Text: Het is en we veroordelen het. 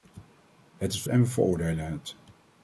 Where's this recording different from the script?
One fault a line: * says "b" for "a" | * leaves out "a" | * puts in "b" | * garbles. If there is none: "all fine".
all fine